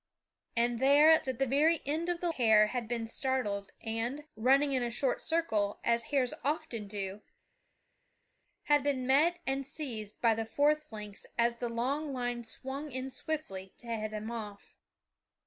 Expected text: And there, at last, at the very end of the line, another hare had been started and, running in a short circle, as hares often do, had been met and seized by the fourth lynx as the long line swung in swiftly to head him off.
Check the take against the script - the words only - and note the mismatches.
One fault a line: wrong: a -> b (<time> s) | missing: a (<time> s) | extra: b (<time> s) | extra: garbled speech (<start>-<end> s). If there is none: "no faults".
missing: last (1.3 s)
missing: line another (2.3 s)